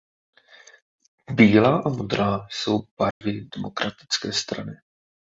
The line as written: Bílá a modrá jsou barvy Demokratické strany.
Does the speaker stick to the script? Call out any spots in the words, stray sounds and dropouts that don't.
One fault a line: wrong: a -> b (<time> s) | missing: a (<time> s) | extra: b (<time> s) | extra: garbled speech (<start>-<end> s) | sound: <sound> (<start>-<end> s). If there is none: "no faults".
sound: dropout (3.1-3.2 s)